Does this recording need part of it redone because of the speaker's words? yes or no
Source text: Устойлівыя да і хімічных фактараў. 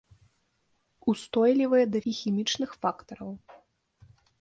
no